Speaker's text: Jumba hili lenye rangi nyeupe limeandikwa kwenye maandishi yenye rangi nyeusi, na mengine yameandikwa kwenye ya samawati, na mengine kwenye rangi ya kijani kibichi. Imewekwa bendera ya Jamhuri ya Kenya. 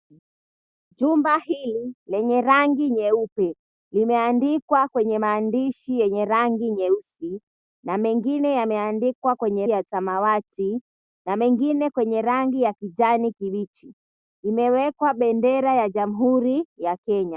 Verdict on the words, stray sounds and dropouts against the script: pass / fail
pass